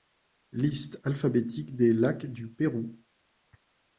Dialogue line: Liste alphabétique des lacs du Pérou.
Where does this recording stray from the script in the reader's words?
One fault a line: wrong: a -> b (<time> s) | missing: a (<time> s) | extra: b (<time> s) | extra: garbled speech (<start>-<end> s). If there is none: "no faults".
no faults